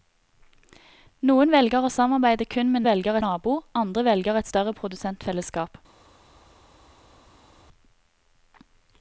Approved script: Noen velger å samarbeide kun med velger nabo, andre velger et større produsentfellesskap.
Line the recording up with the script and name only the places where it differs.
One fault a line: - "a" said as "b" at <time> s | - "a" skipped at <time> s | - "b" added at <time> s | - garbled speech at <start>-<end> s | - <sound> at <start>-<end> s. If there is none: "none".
none